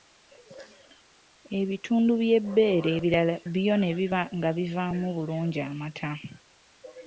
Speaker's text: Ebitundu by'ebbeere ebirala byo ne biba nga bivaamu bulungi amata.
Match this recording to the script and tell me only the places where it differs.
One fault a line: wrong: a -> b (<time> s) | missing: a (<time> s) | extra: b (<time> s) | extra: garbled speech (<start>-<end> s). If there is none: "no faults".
no faults